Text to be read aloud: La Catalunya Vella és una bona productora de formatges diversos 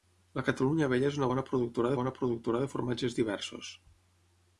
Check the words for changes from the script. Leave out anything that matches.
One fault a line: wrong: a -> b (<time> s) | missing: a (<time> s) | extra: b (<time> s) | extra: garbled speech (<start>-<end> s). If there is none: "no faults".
extra: bona productora (2.0 s)